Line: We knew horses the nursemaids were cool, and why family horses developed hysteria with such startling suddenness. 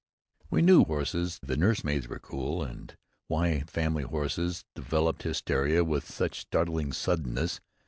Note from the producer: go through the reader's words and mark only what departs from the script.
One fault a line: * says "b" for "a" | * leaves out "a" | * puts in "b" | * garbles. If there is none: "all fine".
all fine